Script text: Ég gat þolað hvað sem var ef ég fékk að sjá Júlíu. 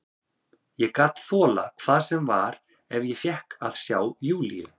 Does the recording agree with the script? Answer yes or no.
yes